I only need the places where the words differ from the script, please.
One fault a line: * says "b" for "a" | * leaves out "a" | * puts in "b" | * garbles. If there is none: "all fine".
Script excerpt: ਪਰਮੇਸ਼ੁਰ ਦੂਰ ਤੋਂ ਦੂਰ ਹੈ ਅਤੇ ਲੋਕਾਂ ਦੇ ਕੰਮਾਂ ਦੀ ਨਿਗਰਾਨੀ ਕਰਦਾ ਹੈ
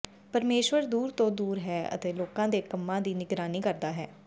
all fine